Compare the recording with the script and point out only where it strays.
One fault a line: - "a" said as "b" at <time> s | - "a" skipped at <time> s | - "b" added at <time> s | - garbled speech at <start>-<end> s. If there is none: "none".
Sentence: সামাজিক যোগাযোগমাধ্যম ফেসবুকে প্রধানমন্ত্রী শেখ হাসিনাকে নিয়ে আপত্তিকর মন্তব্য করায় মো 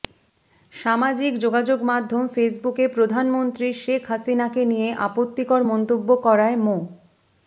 none